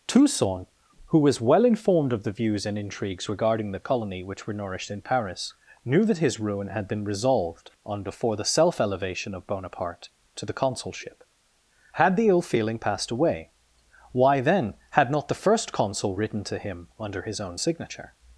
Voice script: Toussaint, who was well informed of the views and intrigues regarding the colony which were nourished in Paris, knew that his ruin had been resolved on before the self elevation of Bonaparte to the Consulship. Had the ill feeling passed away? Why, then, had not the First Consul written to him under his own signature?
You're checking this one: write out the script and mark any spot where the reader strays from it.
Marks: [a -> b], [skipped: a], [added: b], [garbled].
Toussaint, who was well informed of the views and intrigues regarding the colony which were nourished in Paris, knew that his ruin had been resolved on before the self elevation of Bonaparte to the Consulship. Had the ill feeling passed away? Why, then, had not the First Consul written to him under his own signature?